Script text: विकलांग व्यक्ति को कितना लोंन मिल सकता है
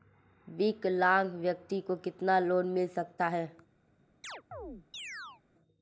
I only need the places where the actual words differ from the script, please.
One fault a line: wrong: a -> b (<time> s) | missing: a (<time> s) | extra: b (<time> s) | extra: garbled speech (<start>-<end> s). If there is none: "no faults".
no faults